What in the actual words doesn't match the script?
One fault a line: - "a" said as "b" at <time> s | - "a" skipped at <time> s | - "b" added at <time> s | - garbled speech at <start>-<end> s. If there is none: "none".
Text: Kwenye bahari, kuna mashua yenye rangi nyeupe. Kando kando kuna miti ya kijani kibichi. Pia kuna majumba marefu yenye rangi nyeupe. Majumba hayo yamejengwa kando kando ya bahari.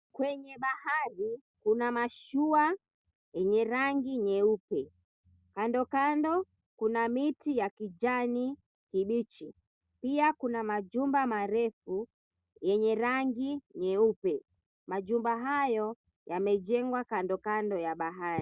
none